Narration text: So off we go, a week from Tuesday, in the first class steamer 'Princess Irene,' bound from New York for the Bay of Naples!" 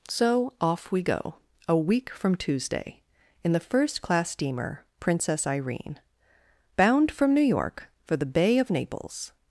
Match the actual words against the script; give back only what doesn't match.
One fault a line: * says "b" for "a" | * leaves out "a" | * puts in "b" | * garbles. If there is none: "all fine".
all fine